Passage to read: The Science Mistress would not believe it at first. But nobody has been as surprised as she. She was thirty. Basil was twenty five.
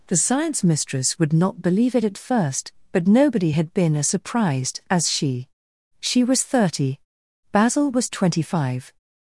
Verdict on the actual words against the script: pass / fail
fail